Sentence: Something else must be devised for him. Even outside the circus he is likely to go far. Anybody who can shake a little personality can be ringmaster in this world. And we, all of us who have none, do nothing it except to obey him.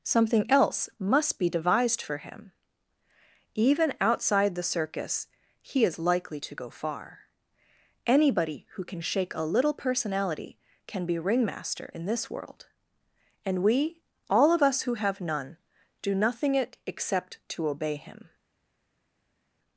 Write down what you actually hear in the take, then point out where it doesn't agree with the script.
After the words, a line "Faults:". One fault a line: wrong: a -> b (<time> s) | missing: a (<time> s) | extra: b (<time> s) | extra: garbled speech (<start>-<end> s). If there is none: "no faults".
Something else must be devised for him. Even outside the circus he is likely to go far. Anybody who can shake a little personality can be ringmaster in this world. And we, all of us who have none, do nothing it except to obey him.
Faults:
no faults